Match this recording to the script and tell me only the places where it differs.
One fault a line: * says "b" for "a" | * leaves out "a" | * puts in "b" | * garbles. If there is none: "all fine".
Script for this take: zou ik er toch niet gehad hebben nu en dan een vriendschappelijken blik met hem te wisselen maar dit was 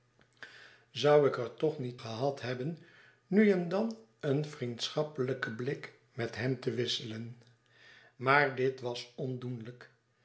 all fine